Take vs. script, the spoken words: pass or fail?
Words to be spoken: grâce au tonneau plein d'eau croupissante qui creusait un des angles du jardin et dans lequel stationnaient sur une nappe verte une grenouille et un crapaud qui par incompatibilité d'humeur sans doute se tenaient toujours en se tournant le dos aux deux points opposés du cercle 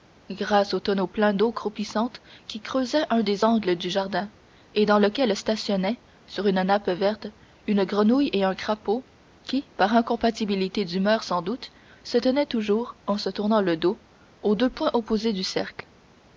pass